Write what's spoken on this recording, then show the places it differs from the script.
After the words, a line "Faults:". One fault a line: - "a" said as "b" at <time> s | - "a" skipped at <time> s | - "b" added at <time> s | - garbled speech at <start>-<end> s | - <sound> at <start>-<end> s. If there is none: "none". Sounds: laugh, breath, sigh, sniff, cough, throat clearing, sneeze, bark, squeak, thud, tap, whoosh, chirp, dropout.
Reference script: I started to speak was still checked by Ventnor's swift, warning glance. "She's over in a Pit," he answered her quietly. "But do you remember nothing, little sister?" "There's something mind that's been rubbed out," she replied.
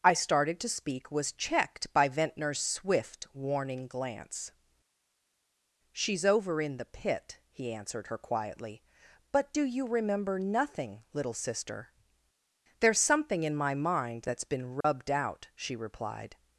I started to speak was checked by Ventnor's swift, warning glance. "She's over in the Pit," he answered her quietly. "But do you remember nothing, little sister?" "There's something in my mind that's been rubbed out," she replied.
Faults:
- "still" skipped at 1.3 s
- "a" said as "the" at 6.8 s
- "in my" added at 13.4 s
- dropout at 14.8-14.8 s